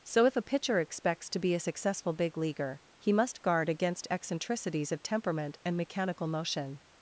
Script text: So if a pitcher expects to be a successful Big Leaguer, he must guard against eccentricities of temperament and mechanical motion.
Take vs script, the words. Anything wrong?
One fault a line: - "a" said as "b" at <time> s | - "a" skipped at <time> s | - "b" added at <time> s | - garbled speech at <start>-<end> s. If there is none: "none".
none